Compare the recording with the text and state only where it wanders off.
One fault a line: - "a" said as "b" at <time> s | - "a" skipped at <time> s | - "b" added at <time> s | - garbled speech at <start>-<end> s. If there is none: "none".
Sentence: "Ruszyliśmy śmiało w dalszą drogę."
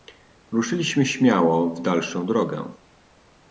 none